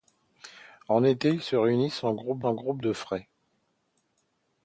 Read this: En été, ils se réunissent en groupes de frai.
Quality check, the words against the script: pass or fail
fail